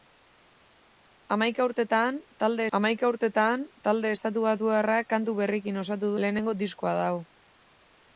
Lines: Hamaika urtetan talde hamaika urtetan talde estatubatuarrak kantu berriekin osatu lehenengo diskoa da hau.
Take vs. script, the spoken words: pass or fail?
pass